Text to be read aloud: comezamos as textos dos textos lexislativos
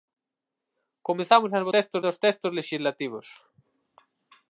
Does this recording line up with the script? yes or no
yes